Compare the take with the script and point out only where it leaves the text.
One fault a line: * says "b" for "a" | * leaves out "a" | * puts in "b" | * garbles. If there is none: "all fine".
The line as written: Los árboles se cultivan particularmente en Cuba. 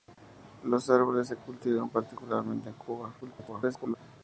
* garbles